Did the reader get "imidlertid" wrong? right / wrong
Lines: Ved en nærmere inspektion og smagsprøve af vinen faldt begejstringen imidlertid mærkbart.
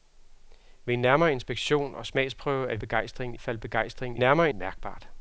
wrong